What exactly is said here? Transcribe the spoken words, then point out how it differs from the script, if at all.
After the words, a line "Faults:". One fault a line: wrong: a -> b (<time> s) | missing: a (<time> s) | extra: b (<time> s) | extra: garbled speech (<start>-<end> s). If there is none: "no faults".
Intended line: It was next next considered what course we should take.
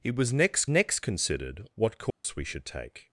It was next next considered what course we should take.
Faults:
no faults